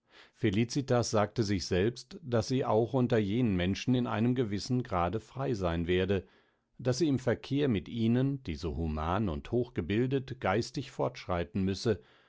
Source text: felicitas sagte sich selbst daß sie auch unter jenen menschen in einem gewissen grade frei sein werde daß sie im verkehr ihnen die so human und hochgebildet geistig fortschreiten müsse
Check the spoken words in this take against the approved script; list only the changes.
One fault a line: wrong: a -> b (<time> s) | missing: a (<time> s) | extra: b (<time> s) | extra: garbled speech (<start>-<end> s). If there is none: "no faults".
extra: mit (7.7 s)